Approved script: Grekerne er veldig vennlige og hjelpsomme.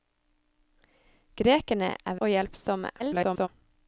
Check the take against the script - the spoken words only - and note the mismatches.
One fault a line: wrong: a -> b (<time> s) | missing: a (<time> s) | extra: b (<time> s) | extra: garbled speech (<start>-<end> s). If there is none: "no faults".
missing: veldig vennlige (2.2 s)
extra: garbled speech (3.0-3.5 s)